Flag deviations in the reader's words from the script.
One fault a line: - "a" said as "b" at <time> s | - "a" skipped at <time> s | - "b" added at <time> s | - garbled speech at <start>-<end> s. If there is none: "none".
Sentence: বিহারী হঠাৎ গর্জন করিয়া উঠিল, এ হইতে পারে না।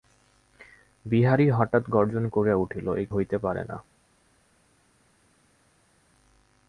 none